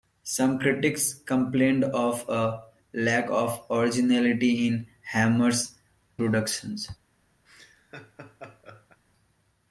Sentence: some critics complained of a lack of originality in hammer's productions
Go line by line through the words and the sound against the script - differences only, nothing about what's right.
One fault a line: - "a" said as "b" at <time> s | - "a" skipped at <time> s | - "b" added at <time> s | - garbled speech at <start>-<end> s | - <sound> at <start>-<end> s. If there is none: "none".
- laugh at 7.5-9.0 s